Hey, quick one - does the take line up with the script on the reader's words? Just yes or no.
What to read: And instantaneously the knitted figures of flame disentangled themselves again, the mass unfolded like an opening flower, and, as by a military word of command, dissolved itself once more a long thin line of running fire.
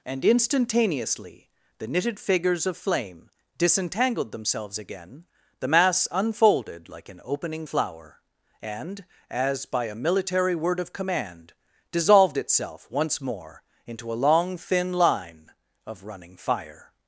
no